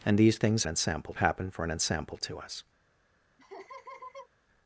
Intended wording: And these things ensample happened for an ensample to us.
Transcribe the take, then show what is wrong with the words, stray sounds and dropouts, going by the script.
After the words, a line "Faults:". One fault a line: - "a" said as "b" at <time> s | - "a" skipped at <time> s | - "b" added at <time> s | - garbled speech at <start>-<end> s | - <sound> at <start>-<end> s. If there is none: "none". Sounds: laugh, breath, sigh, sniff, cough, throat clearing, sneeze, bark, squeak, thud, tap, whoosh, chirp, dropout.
And these things ensample happened for an ensample to us.
Faults:
- laugh at 3.4-4.3 s